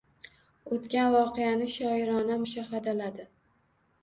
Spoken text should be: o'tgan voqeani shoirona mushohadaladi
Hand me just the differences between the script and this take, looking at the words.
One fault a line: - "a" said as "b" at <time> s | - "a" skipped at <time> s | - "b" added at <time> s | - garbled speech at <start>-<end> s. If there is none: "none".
none